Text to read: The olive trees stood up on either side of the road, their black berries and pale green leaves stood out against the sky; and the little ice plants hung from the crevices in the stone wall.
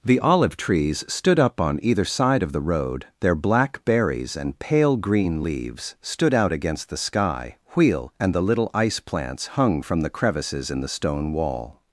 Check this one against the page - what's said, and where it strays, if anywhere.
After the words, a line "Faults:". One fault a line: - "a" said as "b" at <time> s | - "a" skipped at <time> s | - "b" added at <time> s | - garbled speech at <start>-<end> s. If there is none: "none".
The olive trees stood up on either side of the road, their black berries and pale green leaves stood out against the sky; wheel and the little ice plants hung from the crevices in the stone wall.
Faults:
- "wheel" added at 7.7 s